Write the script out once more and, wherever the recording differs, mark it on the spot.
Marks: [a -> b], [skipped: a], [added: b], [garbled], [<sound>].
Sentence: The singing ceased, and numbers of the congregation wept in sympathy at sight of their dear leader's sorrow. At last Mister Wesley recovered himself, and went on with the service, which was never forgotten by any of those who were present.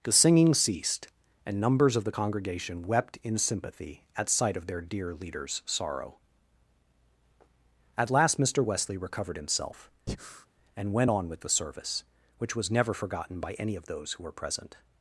The singing ceased, and numbers of the congregation wept in sympathy at sight of their dear leader's sorrow. At last Mister Wesley recovered himself, [breath] and went on with the service, which was never forgotten by any of those who were present.